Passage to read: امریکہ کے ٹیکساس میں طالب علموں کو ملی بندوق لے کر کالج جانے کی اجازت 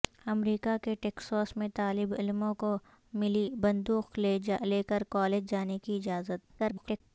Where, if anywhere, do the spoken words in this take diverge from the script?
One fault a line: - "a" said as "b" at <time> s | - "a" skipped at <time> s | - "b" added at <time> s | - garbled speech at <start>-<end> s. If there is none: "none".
- garbled speech at 6.6-7.0 s